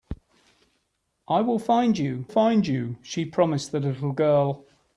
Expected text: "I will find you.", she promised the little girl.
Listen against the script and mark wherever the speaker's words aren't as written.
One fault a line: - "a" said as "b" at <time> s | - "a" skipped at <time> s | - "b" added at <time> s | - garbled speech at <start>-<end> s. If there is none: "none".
- "find you" added at 2.3 s